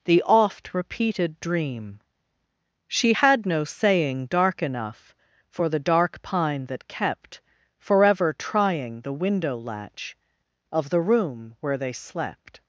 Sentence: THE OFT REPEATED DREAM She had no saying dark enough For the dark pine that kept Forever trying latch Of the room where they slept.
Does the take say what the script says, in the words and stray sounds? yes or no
no